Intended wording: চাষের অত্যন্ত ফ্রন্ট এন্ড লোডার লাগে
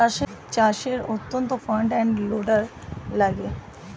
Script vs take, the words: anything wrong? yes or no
no